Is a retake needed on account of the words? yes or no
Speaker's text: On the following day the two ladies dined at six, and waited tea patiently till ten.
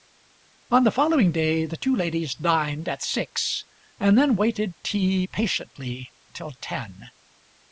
yes